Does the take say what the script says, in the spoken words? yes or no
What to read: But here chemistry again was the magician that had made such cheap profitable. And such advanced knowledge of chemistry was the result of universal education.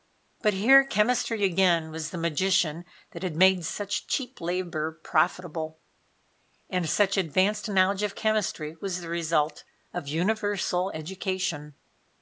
no